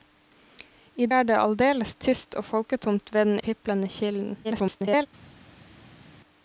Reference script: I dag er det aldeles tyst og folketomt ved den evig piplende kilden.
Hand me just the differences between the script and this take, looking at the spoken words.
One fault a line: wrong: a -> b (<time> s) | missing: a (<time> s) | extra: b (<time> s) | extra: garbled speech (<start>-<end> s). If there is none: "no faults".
missing: dag (1.1 s)
missing: evig (3.4 s)
extra: garbled speech (4.4-5.1 s)